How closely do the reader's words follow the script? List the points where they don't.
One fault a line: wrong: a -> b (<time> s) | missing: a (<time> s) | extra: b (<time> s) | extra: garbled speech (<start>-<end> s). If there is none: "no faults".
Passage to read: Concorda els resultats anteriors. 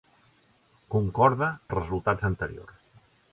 no faults